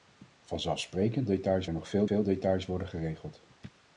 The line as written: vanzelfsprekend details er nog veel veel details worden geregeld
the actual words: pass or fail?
pass